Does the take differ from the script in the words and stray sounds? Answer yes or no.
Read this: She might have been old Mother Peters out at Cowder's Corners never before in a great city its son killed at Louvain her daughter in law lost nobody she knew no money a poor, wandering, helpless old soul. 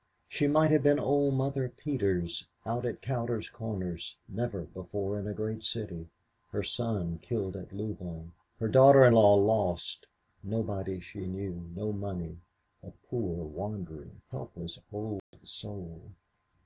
yes